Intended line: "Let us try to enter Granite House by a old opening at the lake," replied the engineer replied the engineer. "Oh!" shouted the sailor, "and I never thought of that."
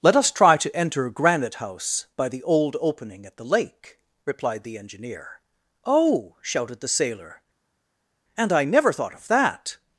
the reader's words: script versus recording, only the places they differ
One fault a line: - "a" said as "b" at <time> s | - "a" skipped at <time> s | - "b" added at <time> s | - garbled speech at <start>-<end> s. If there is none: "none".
- "a" said as "the" at 2.3 s
- "replied the engineer" skipped at 5.4 s